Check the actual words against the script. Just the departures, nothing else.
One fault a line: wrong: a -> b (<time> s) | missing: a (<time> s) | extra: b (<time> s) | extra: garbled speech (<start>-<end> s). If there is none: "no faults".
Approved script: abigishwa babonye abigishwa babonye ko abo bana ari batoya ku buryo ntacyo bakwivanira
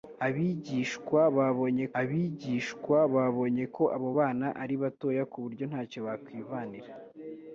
no faults